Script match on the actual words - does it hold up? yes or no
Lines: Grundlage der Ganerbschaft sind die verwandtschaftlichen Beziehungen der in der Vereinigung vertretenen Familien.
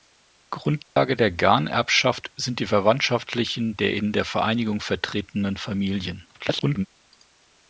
no